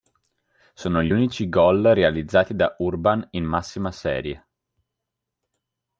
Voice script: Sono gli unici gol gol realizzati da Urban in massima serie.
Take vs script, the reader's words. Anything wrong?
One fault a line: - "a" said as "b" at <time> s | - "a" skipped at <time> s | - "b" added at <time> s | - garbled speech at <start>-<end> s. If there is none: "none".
- "gol" skipped at 1.8 s